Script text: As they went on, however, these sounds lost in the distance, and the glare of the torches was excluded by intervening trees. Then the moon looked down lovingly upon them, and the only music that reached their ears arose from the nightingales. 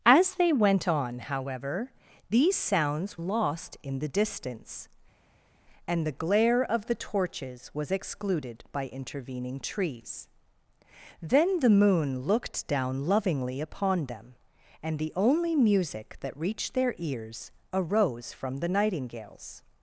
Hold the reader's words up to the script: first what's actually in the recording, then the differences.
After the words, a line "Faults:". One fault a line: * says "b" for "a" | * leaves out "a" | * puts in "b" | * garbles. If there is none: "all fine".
As they went on, however, these sounds lost in the distance, and the glare of the torches was excluded by intervening trees. Then the moon looked down lovingly upon them, and the only music that reached their ears arose from the nightingales.
Faults:
all fine